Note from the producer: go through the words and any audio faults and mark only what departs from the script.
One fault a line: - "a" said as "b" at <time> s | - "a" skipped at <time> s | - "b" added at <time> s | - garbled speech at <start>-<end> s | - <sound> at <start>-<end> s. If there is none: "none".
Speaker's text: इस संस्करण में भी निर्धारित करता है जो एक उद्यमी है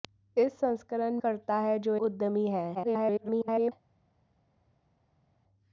- "में भी निर्धारित" skipped at 1.2 s
- "एक" skipped at 2.0 s
- garbled speech at 2.7-3.7 s